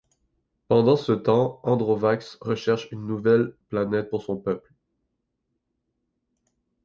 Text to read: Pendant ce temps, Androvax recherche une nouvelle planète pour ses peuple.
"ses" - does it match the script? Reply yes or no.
no